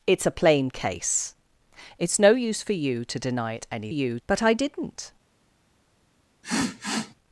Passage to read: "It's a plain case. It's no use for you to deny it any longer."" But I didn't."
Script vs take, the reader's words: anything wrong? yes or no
yes